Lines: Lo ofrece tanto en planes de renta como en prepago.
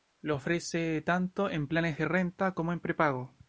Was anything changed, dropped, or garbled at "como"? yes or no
no